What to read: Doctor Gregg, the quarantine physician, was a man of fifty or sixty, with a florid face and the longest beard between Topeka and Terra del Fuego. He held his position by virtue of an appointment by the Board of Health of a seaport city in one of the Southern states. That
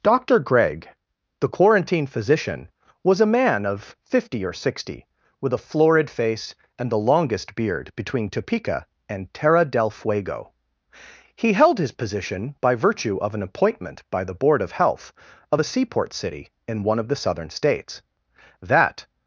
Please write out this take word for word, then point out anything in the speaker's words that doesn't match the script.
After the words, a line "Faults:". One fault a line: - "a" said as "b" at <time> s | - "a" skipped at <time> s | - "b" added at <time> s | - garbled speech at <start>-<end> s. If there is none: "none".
Doctor Gregg, the quarantine physician, was a man of fifty or sixty, with a florid face and the longest beard between Topeka and Terra del Fuego. He held his position by virtue of an appointment by the Board of Health of a seaport city in one of the Southern states. That
Faults:
none